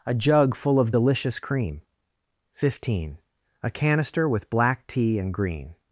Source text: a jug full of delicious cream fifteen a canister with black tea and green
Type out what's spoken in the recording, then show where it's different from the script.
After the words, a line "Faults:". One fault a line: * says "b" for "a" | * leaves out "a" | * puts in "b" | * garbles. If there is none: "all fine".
a jug full of delicious cream fifteen a canister with black tea and green
Faults:
all fine